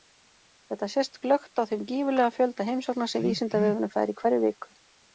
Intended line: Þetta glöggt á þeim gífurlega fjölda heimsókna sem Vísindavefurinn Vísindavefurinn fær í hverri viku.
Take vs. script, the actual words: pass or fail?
fail